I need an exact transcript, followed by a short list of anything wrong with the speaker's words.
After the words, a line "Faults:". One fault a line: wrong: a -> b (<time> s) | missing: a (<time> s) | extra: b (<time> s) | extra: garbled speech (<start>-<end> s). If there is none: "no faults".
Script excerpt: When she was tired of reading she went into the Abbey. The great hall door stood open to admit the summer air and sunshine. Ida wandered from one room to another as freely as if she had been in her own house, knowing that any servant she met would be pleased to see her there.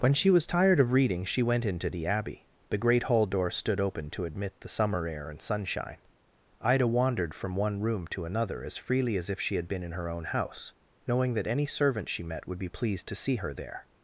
When she was tired of reading she went into the Abbey. The great hall door stood open to admit the summer air and sunshine. Ida wandered from one room to another as freely as if she had been in her own house, knowing that any servant she met would be pleased to see her there.
Faults:
no faults